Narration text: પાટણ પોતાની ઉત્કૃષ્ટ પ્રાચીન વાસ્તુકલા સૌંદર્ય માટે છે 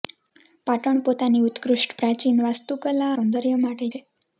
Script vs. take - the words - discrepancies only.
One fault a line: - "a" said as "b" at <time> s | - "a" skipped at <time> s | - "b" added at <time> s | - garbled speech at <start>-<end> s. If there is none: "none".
none